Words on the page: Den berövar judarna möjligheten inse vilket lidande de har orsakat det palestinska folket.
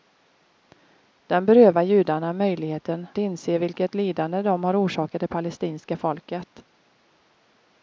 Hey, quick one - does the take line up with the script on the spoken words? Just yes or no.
yes